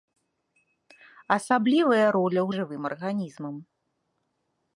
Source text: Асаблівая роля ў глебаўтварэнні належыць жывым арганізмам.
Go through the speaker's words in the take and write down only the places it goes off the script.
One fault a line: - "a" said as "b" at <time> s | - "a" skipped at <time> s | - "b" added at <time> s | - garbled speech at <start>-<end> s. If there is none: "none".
- "глебаўтварэнні належыць" skipped at 2.5 s